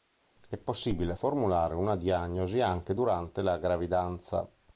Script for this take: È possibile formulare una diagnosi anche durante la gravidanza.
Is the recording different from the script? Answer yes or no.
no